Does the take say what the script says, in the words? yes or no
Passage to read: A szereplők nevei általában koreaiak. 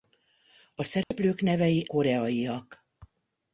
no